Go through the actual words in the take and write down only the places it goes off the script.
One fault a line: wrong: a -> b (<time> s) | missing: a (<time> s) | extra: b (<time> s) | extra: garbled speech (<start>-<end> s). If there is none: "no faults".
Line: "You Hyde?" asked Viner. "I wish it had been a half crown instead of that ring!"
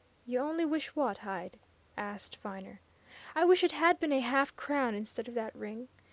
extra: only wish what (0.4 s)